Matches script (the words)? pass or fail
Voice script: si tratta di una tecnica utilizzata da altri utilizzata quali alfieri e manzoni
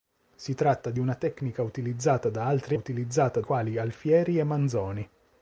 pass